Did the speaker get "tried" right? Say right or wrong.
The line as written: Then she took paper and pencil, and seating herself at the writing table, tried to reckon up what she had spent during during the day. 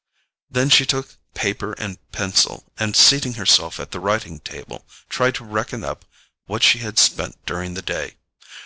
right